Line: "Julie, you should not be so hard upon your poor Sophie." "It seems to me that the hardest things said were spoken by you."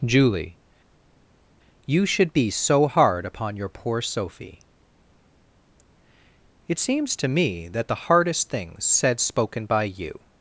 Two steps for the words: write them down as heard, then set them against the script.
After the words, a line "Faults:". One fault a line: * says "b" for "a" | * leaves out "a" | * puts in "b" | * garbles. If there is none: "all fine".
"Julie, you should be so hard upon your poor Sophie." "It seems to me that the hardest things said spoken by you."
Faults:
* leaves out "not"
* leaves out "were"